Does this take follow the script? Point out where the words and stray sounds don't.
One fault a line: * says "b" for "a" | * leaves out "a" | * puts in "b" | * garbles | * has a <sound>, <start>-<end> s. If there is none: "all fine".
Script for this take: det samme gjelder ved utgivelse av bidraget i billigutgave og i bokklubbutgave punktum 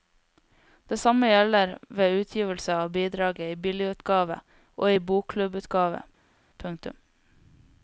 all fine